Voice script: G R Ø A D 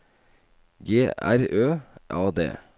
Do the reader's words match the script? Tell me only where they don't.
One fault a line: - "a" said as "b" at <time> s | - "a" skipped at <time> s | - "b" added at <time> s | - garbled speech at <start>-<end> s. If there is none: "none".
none